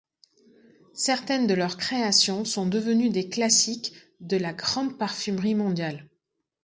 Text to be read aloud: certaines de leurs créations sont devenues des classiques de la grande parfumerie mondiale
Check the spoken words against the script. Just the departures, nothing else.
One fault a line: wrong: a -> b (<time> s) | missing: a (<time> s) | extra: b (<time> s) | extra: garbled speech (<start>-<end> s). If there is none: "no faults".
no faults